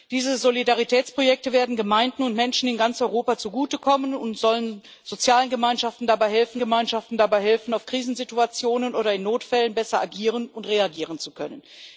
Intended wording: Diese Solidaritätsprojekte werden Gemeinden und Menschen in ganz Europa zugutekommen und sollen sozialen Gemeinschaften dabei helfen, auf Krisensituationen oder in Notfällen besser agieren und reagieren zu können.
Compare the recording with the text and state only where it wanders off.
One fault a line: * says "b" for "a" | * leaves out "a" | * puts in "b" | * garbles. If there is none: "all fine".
* puts in "Gemeinschaften dabei helfen"